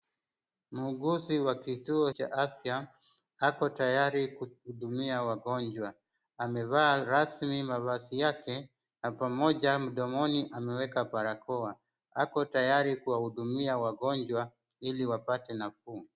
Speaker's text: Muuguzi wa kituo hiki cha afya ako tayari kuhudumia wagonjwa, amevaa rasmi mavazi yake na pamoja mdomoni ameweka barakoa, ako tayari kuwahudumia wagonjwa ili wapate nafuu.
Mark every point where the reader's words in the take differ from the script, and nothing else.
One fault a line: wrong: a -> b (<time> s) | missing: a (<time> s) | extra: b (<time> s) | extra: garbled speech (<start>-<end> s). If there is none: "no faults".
missing: hiki (2.1 s)